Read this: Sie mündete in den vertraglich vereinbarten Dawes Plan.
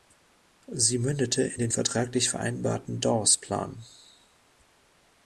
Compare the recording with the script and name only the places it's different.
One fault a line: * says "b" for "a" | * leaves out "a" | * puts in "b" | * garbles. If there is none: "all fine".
all fine